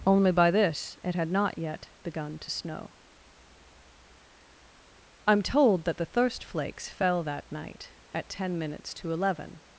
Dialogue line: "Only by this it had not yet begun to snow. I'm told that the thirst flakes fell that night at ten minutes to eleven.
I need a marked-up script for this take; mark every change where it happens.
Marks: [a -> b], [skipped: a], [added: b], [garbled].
"Only by this it had not yet begun to snow. I'm told that the thirst flakes fell that night at ten minutes to eleven.